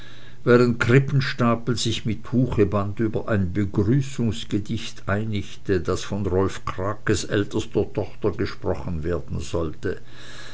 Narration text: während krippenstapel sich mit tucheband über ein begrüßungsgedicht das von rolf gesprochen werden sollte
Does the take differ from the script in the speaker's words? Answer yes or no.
yes